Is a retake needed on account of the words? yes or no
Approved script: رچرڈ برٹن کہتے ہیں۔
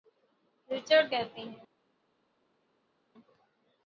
yes